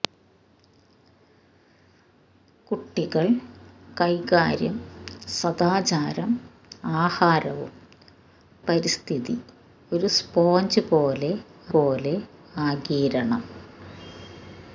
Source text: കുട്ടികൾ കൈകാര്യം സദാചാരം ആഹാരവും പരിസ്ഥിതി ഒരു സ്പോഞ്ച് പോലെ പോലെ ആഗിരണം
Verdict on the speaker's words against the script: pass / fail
pass